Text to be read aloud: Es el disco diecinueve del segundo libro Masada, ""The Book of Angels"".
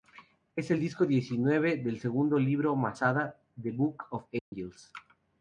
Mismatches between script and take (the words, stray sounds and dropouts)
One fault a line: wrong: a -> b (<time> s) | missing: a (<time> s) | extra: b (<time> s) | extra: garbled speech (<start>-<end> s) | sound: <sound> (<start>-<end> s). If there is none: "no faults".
sound: dropout (4.4-4.5 s)